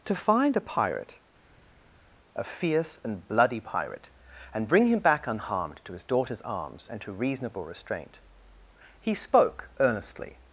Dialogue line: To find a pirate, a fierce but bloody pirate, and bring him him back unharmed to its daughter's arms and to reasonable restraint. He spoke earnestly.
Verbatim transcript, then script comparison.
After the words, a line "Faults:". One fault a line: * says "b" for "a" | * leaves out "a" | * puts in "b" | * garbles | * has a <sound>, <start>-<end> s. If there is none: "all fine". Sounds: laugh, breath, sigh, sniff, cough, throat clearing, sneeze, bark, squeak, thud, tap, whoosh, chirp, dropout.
To find a pirate, a fierce and bloody pirate, and bring him back unharmed to his daughter's arms and to reasonable restraint. He spoke earnestly.
Faults:
* says "and" for "but"
* leaves out "him"
* says "his" for "its"